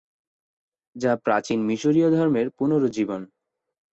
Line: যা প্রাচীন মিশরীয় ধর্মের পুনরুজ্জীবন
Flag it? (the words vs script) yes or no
no